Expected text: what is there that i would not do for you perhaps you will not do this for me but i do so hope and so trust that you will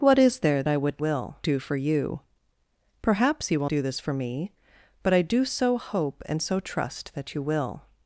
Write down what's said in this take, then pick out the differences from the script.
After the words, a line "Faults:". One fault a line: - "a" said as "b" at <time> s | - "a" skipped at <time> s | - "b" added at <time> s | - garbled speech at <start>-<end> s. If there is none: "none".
what is there i would will do for you perhaps you will do this for me but i do so hope and so trust that you will
Faults:
- "that" skipped at 0.6 s
- "not" said as "will" at 1.0 s
- "not" skipped at 3.7 s